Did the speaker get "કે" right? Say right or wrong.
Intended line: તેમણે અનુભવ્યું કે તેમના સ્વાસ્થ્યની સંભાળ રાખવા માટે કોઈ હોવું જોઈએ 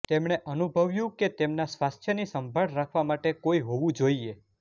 right